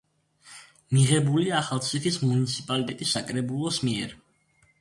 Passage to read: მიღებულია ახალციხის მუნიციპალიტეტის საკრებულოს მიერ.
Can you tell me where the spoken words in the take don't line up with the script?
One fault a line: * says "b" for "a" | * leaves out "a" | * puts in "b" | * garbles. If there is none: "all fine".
all fine